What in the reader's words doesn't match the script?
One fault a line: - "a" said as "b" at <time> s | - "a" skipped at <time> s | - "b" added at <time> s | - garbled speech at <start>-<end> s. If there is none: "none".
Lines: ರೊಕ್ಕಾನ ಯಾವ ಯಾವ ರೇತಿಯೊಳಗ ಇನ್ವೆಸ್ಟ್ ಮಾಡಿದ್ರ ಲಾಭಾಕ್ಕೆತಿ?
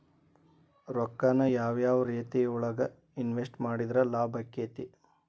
none